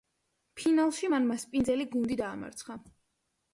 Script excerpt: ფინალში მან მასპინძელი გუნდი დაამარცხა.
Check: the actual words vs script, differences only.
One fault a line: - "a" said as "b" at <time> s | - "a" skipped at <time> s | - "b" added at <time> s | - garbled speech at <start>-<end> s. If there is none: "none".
none